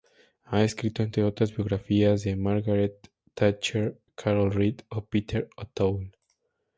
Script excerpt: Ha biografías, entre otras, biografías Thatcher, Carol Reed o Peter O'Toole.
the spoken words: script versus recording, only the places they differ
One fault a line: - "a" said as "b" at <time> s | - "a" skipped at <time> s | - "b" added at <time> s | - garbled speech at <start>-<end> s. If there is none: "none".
- "biografías" said as "escrito" at 0.6 s
- "de Margaret" added at 2.2 s